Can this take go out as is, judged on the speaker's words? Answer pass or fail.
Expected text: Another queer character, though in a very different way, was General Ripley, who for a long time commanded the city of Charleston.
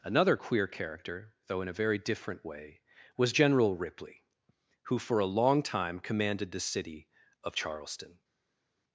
pass